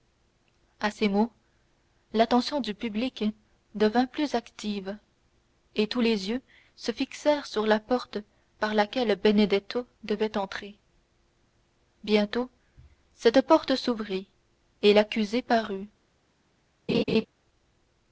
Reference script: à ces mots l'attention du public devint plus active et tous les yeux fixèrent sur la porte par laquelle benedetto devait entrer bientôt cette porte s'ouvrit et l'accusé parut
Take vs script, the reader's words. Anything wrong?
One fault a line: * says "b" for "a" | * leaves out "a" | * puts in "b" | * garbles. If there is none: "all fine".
* puts in "se"